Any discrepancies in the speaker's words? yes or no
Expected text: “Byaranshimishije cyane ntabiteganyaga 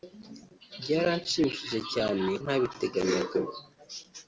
no